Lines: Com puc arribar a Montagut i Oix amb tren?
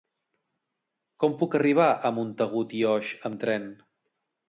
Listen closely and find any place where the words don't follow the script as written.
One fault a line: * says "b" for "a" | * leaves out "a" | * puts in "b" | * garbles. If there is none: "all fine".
all fine